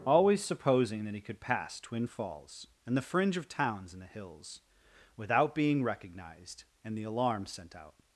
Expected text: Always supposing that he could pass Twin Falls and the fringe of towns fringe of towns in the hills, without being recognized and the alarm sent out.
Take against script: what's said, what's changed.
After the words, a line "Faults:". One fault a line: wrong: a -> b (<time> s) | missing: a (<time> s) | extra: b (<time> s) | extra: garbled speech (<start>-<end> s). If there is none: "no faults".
Always supposing that he could pass Twin Falls and the fringe of towns in the hills, without being recognized and the alarm sent out.
Faults:
missing: fringe of towns (3.9 s)